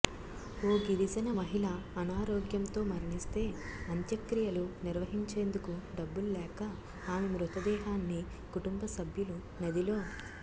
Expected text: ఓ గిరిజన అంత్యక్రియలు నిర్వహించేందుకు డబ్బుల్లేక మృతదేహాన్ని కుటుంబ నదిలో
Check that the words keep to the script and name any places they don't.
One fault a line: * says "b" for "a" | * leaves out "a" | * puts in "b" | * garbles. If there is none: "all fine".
* puts in "మహిళ అనారోగ్యంతో మరణిస్తే"
* puts in "ఆమె"
* puts in "సభ్యులు"